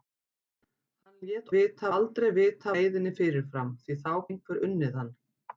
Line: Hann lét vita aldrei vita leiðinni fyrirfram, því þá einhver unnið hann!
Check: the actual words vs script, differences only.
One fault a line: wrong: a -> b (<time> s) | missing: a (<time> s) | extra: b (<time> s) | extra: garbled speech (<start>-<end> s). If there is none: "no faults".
no faults